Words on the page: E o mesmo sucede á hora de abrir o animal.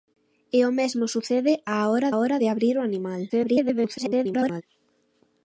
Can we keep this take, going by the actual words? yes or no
no